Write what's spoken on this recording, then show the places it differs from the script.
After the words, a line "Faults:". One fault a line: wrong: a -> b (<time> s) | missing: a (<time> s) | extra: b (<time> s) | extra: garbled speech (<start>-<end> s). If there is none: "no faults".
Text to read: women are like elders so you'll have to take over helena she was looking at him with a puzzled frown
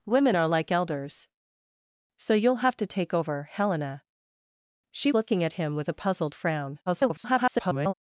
women are like elders so you'll have to take over helena she looking at him with a puzzled frown [garbled]
Faults:
missing: was (5.1 s)
extra: garbled speech (6.9-7.9 s)